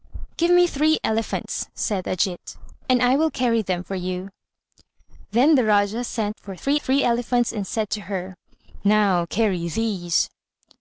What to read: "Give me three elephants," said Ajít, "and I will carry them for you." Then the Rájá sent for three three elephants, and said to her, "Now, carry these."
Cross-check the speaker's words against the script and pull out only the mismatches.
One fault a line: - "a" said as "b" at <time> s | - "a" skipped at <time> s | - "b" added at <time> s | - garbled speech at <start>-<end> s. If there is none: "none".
none